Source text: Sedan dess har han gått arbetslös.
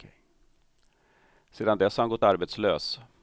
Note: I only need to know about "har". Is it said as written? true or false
true